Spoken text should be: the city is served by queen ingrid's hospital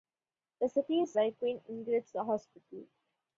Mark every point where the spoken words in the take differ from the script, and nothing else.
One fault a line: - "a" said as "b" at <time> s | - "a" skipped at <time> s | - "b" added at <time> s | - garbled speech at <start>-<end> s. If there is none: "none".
- "served" skipped at 1.1 s